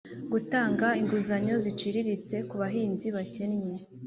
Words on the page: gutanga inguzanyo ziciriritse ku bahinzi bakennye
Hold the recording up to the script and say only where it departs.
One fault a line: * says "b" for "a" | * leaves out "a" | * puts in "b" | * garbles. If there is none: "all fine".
all fine